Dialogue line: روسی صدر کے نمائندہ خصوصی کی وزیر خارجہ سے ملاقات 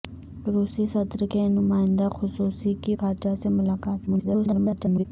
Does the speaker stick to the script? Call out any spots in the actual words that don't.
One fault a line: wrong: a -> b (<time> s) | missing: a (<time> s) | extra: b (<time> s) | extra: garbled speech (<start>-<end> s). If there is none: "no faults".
missing: وزیر (3.0 s)
extra: garbled speech (4.1-5.1 s)